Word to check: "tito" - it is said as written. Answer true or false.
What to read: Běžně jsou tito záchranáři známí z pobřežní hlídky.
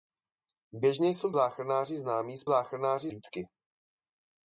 false